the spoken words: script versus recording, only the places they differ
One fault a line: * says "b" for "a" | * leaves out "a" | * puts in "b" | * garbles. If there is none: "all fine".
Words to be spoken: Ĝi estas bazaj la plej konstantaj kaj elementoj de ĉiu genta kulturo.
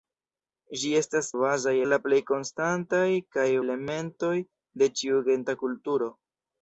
all fine